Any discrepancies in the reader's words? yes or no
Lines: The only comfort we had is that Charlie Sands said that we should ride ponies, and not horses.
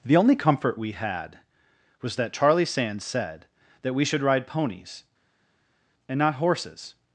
yes